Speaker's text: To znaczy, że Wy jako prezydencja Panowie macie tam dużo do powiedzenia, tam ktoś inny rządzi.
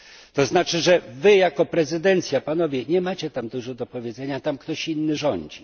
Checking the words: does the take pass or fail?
fail